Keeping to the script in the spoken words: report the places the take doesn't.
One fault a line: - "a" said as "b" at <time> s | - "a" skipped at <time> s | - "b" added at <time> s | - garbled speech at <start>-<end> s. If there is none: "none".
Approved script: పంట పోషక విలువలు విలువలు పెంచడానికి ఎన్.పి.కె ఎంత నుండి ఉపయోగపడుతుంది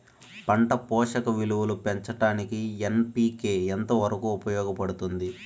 - "విలువలు" skipped at 1.8 s
- "నుండి" said as "వరకు" at 4.0 s